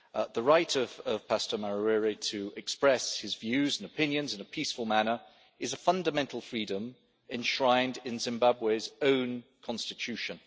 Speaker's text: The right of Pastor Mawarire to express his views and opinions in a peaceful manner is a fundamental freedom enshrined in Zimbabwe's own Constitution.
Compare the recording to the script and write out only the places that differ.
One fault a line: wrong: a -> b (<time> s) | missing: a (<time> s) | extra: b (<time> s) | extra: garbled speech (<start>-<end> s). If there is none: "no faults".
no faults